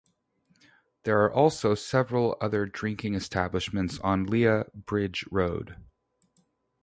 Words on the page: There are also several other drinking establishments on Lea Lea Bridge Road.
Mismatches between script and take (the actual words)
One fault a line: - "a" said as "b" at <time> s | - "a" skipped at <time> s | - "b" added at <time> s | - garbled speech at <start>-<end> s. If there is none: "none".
- "Lea" skipped at 4.6 s